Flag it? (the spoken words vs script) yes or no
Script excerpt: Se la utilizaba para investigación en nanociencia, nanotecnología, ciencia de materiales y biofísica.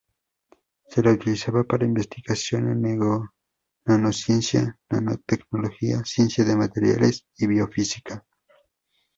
no